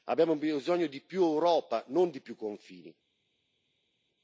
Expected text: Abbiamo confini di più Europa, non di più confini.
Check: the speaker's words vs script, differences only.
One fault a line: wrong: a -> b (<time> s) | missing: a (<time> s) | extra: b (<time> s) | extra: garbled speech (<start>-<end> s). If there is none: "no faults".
wrong: confini -> bisogno (0.3 s)